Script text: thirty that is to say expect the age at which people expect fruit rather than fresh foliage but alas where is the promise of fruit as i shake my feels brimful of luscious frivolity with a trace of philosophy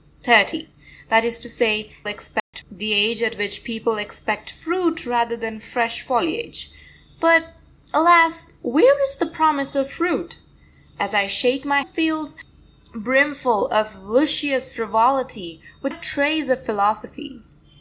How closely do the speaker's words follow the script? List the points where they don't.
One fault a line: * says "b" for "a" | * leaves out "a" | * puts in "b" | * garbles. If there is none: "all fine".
all fine